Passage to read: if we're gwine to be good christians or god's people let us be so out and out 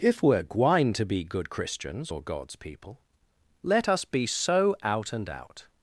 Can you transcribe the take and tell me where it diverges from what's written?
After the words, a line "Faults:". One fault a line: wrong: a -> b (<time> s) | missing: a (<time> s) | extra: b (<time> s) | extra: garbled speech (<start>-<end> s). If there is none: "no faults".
if we're gwine to be good christians or god's people let us be so out and out
Faults:
no faults